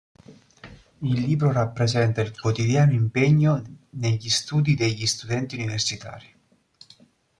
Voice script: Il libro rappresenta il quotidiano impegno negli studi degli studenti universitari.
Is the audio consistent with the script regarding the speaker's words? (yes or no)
yes